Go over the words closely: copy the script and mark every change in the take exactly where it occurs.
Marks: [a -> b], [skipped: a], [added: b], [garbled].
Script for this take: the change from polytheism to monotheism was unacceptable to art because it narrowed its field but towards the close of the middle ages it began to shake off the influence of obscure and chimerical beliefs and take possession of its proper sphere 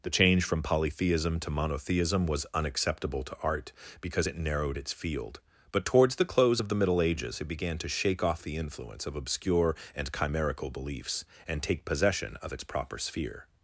the change from polytheism to monotheism was unacceptable to art because it narrowed its field but towards the close of the middle ages it began to shake off the influence of obscure and chimerical beliefs and take possession of its proper sphere